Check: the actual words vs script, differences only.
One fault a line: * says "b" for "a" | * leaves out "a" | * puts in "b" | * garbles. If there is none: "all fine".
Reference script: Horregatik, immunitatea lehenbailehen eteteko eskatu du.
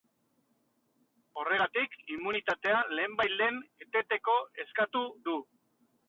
all fine